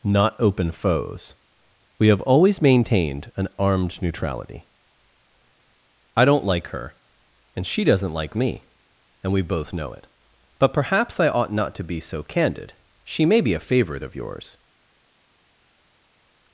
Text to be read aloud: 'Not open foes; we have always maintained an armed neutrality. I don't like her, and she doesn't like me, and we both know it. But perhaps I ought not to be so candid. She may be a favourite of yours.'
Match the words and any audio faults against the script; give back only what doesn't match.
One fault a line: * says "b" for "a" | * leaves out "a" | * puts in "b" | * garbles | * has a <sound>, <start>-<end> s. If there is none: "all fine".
all fine